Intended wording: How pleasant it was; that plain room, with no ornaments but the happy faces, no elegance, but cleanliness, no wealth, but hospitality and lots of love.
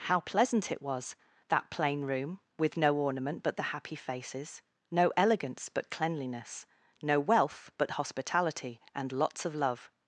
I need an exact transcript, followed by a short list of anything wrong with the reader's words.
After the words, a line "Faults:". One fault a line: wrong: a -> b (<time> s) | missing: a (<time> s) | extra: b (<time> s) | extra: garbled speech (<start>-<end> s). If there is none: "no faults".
How pleasant it was; that plain room, with no ornament but the happy faces, no elegance, but cleanliness, no wealth, but hospitality and lots of love.
Faults:
wrong: ornaments -> ornament (2.9 s)